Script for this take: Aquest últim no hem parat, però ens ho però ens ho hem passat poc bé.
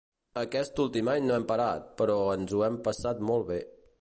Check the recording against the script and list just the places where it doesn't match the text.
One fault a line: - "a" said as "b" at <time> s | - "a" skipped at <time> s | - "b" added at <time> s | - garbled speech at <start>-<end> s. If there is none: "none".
- "any" added at 1.1 s
- "però ens ho" skipped at 2.6 s
- "poc" said as "molt" at 3.3 s